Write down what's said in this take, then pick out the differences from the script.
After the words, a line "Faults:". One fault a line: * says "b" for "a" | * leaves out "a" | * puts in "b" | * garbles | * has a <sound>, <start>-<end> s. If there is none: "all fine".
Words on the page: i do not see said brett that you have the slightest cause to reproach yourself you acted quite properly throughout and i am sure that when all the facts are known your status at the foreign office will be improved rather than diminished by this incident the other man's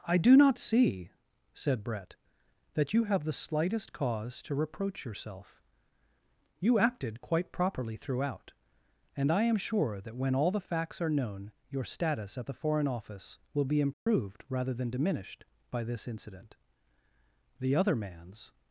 i do not see said brett that you have the slightest cause to reproach yourself you acted quite properly throughout and i am sure that when all the facts are known your status at the foreign office will be improved rather than diminished by this incident the other man's
Faults:
* has a dropout, 13.9-14.1 s